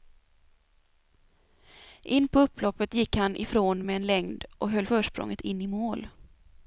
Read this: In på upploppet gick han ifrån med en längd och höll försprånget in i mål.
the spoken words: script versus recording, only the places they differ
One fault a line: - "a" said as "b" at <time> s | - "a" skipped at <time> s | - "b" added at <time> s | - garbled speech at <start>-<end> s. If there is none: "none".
none